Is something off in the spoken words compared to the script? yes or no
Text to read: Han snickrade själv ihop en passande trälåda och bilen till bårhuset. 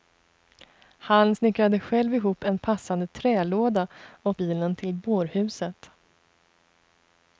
no